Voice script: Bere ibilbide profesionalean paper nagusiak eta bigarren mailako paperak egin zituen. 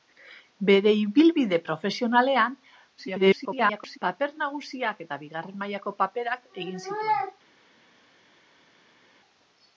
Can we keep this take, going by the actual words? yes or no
no